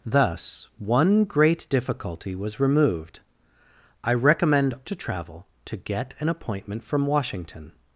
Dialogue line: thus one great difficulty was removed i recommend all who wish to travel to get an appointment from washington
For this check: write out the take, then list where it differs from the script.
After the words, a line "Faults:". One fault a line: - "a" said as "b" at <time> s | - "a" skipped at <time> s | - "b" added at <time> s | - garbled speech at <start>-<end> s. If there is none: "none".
thus one great difficulty was removed i recommend to travel to get an appointment from washington
Faults:
- "all who wish" skipped at 4.7 s